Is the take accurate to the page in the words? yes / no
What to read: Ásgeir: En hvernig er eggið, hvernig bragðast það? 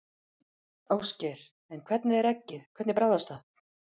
yes